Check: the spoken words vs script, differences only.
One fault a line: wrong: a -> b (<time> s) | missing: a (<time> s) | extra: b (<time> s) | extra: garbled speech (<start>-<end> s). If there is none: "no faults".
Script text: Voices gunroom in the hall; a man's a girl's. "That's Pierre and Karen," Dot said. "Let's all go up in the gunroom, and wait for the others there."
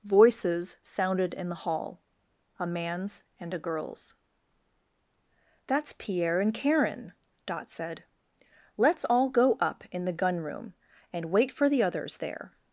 wrong: gunroom -> sounded (0.8 s)
extra: and (3.4 s)